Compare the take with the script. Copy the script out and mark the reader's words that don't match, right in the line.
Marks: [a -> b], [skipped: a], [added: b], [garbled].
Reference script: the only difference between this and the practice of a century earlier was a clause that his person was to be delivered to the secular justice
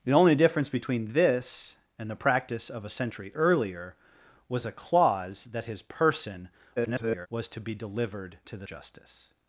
the only difference between this and the practice of a century earlier was a clause that his person [garbled] was to be delivered to the [skipped: secular] justice